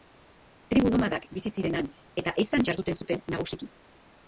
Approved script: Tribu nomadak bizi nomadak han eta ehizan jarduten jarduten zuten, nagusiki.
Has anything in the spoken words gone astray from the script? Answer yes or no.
yes